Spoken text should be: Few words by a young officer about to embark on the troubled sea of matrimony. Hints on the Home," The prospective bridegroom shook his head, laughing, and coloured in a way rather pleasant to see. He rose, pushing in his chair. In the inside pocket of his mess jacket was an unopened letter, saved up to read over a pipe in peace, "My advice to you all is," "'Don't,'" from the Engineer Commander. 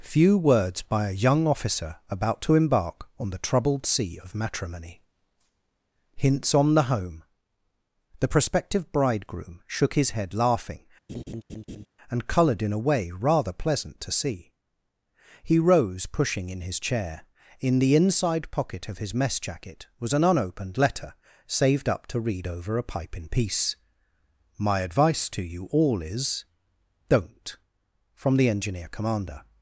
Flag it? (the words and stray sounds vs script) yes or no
yes